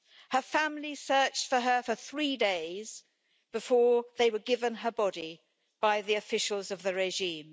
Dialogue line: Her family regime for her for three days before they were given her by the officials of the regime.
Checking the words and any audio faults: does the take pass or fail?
fail